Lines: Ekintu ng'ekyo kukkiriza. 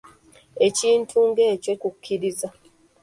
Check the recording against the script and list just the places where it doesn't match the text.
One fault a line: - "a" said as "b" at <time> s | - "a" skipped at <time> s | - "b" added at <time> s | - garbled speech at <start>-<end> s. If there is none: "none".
none